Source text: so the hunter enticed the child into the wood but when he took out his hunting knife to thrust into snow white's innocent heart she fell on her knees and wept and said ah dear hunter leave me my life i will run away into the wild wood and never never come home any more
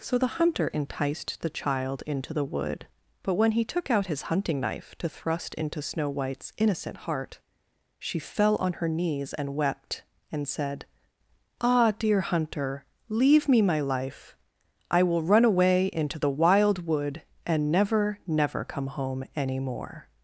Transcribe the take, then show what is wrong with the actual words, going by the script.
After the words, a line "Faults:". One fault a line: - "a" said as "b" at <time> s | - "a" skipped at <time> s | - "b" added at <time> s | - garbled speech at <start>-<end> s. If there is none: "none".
so the hunter enticed the child into the wood but when he took out his hunting knife to thrust into snow white's innocent heart she fell on her knees and wept and said ah dear hunter leave me my life i will run away into the wild wood and never never come home any more
Faults:
none